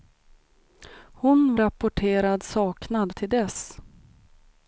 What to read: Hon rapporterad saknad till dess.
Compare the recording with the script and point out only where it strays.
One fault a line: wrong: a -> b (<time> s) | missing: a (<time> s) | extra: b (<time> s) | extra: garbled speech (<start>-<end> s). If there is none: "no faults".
no faults